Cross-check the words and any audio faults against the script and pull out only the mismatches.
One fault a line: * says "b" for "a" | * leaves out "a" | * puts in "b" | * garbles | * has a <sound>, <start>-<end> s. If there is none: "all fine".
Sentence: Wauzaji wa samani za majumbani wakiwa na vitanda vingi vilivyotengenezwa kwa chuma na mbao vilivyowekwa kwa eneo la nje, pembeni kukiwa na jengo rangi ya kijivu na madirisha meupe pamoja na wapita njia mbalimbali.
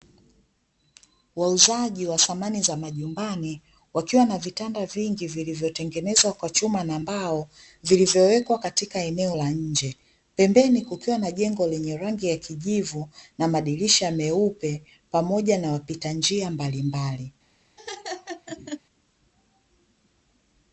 * says "katika" for "kwa"
* puts in "lenye"
* has a laugh, 17.8-18.8 s